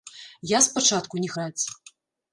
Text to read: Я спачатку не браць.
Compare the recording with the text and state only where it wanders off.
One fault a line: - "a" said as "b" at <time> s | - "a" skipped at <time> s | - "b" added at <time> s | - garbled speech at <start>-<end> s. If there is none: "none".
none